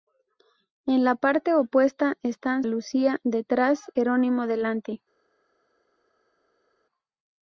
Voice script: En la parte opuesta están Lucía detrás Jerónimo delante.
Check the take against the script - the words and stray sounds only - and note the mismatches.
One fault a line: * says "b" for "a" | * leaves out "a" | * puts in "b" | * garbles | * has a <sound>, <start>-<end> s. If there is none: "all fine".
all fine